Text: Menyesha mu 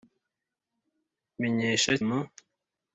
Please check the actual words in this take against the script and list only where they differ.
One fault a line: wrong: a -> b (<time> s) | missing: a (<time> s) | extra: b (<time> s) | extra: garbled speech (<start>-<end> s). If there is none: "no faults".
no faults